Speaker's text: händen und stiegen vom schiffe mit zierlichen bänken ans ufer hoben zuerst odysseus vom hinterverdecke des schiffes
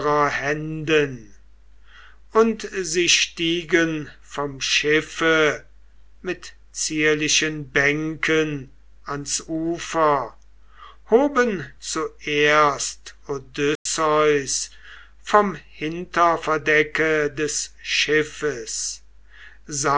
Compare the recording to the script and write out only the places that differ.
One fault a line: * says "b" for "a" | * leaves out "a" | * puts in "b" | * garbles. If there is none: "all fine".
* puts in "sie"